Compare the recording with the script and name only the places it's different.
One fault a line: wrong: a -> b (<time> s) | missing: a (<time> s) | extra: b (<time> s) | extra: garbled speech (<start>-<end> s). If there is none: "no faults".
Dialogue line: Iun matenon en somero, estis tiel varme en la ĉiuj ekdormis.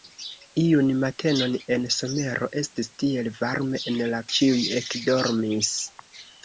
no faults